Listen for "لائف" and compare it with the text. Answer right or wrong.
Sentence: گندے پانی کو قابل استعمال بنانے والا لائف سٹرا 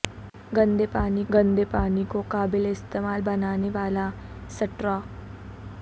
wrong